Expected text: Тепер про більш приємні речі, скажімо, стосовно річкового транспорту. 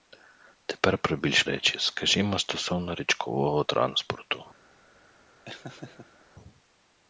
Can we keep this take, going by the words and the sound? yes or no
no